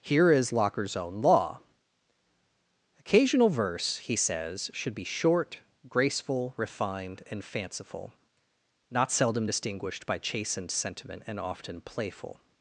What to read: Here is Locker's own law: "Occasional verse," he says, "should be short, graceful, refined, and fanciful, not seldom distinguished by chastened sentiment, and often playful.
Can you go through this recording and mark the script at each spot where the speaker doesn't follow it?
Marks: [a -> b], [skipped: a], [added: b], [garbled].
Here is Locker's own law: "Occasional verse," he says, "should be short, graceful, refined, and fanciful, not seldom distinguished by chastened sentiment, and often playful.